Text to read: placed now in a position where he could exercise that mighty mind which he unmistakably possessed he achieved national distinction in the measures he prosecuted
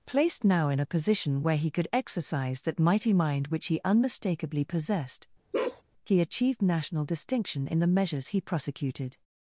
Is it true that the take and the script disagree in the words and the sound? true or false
true